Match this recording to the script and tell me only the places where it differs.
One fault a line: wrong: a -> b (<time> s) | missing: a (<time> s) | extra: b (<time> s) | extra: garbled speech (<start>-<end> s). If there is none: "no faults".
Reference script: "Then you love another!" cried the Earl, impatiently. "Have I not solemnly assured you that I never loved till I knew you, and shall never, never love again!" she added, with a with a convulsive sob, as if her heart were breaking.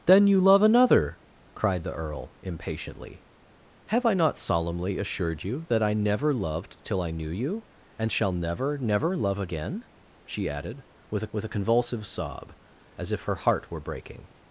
no faults